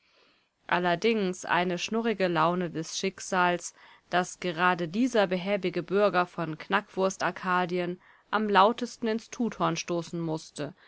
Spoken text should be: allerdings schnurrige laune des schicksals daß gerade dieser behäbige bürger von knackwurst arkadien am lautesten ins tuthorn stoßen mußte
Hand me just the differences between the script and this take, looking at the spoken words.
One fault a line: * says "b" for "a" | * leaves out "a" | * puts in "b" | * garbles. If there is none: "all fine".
* puts in "eine"